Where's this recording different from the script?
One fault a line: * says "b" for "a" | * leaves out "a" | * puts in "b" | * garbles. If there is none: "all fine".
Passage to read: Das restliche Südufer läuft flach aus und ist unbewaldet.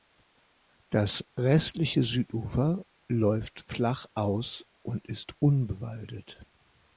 all fine